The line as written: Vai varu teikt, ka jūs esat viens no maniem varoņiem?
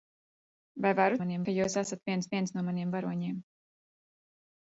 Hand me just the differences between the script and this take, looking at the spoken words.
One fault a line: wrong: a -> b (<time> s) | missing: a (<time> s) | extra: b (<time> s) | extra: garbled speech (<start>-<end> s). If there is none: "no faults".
wrong: teikt -> maniem (1.2 s)
extra: viens (2.3 s)